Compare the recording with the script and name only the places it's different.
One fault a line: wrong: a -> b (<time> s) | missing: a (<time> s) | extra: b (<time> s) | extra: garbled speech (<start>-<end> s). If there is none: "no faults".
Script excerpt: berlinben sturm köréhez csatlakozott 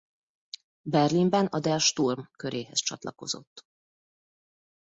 extra: a der (1.4 s)